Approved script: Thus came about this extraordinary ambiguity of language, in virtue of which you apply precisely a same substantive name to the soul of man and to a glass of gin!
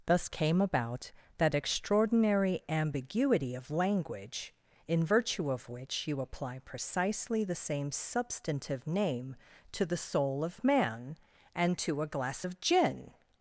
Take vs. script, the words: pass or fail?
fail